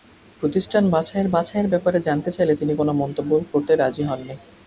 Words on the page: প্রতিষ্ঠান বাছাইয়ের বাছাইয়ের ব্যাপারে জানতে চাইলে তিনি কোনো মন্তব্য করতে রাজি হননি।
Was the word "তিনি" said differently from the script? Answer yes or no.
no